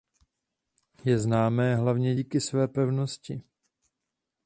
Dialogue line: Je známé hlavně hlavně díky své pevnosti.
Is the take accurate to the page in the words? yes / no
no